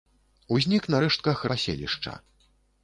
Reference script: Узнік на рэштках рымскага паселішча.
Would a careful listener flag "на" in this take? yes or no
no